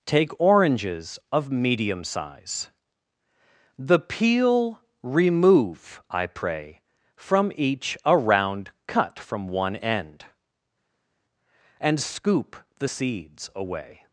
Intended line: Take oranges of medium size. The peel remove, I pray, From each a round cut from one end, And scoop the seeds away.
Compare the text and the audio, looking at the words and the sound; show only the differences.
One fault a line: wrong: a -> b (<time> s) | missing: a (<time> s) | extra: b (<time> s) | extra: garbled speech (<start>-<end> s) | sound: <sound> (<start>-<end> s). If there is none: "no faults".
no faults